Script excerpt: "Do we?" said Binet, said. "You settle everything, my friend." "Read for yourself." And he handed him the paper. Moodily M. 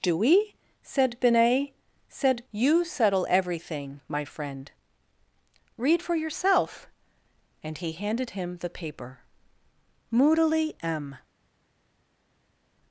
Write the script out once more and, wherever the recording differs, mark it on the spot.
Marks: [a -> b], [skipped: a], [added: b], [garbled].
"Do we?" said Binet, said. "You settle everything, my friend." "Read for yourself." And he handed him the paper. Moodily M.